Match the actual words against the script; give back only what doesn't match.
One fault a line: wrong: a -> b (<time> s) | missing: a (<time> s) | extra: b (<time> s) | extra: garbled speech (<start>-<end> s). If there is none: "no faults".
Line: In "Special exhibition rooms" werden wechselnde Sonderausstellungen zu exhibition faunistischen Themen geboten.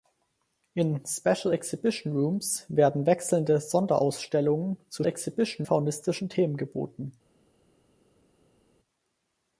no faults